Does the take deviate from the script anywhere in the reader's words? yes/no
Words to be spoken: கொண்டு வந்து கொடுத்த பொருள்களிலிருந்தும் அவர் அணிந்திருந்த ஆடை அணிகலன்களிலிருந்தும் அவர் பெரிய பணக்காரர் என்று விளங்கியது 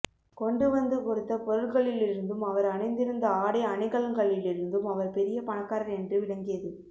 no